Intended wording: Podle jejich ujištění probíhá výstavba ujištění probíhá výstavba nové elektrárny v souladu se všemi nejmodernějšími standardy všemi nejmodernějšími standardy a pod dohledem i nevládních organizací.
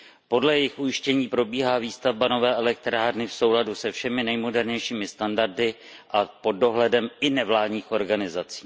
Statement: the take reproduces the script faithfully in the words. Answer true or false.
false